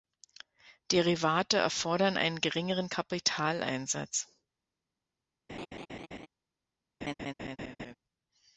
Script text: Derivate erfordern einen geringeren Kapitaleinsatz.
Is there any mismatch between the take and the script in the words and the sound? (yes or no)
yes